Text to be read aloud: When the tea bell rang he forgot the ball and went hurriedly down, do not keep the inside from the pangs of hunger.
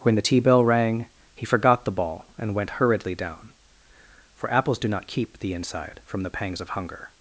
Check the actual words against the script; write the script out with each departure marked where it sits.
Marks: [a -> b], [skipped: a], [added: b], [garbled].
When the tea bell rang he forgot the ball and went hurriedly down, [added: for apples] do not keep the inside from the pangs of hunger.